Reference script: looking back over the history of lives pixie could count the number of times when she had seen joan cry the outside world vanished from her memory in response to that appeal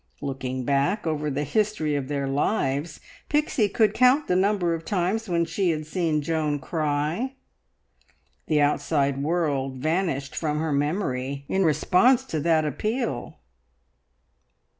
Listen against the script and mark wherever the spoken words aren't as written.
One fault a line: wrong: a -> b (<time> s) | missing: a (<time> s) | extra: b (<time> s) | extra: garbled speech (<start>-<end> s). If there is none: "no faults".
extra: their (2.1 s)